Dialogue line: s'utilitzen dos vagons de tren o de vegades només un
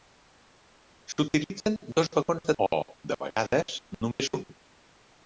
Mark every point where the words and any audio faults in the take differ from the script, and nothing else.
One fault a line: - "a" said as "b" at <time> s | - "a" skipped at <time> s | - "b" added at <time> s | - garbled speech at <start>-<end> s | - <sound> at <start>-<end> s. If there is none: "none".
- "tren" skipped at 2.6 s
- dropout at 4.2-4.2 s